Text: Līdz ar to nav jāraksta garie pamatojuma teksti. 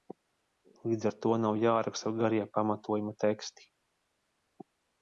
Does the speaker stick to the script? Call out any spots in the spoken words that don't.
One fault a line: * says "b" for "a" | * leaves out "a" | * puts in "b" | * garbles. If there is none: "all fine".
all fine